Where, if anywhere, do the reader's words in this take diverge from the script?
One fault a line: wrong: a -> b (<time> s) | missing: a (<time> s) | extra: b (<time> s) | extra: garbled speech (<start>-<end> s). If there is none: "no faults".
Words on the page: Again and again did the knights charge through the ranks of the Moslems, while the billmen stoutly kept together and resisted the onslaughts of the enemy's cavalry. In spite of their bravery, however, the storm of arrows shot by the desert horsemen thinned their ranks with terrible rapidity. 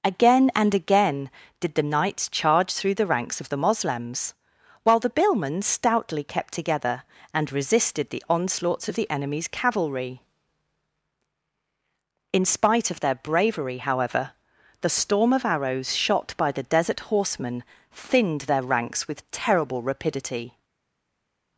no faults